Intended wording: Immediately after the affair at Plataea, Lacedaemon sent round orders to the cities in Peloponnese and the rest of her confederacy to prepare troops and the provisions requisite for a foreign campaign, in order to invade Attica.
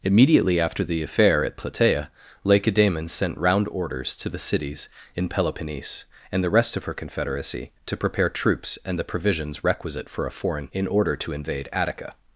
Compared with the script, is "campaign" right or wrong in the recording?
wrong